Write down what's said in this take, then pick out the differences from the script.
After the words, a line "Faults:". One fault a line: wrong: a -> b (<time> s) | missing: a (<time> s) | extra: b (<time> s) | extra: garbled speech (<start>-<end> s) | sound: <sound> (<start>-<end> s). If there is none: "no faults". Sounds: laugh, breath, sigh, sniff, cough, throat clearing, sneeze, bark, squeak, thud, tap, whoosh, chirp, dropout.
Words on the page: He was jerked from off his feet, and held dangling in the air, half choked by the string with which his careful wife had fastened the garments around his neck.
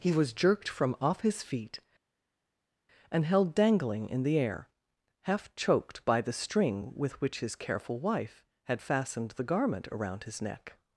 He was jerked from off his feet, and held dangling in the air, half choked by the string with which his careful wife had fastened the garment around his neck.
Faults:
wrong: garments -> garment (9.5 s)